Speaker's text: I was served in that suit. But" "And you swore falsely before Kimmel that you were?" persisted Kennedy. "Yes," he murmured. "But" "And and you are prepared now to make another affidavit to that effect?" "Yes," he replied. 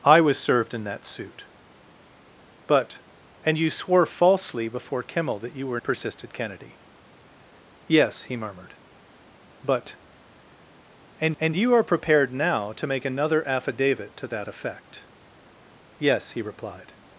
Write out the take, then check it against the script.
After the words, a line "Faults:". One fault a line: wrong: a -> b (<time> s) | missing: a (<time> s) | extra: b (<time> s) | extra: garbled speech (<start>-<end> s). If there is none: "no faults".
I was served in that suit. But" "And you swore falsely before Kimmel that you were?" persisted Kennedy. "Yes," he murmured. "But" "And and you are prepared now to make another affidavit to that effect?" "Yes," he replied.
Faults:
no faults